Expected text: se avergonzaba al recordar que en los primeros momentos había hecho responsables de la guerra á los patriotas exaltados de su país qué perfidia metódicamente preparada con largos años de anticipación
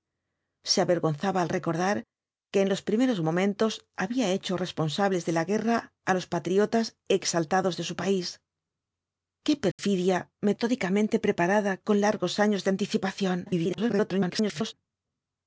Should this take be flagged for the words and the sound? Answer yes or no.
yes